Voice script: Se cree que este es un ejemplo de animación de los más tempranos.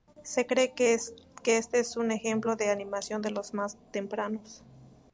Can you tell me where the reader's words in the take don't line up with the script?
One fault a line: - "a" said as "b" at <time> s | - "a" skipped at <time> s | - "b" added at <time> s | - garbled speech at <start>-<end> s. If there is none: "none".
none